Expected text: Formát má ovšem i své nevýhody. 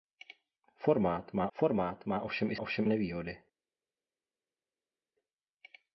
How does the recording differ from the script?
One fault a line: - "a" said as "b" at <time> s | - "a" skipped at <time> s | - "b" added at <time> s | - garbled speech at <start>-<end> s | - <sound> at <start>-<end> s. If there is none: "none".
- "formát má" added at 1.5 s
- "své" said as "ovšem" at 2.6 s